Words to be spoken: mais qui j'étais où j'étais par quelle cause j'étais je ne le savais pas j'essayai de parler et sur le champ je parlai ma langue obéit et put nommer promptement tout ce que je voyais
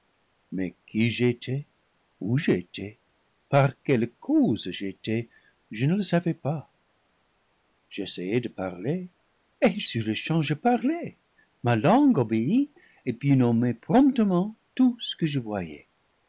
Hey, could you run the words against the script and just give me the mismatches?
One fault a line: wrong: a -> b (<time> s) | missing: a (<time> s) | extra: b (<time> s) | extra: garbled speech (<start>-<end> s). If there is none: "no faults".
no faults